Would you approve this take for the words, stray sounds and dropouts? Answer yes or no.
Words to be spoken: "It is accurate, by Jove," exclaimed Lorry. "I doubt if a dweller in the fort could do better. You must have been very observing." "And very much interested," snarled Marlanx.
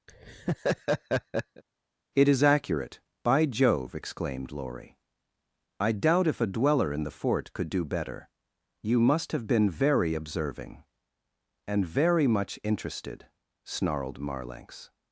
no